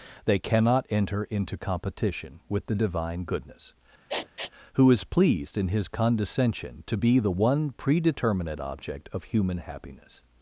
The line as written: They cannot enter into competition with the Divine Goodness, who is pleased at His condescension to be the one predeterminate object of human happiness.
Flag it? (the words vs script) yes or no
yes